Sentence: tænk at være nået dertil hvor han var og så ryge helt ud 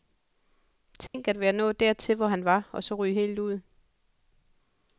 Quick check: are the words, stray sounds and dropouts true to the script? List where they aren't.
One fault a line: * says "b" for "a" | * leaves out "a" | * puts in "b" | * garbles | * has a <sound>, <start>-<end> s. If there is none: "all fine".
* has a dropout, 1.1-1.1 s